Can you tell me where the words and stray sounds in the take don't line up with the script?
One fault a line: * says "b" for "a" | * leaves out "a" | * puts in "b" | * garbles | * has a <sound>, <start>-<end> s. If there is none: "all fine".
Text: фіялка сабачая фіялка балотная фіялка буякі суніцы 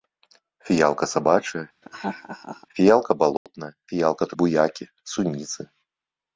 * has a laugh, 1.8-2.7 s
* has a dropout, 3.4-3.5 s